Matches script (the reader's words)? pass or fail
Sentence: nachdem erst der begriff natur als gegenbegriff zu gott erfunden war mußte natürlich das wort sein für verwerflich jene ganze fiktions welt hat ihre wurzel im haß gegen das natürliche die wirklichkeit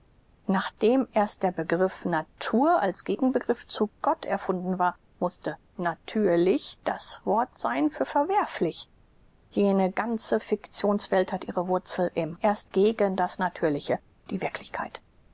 fail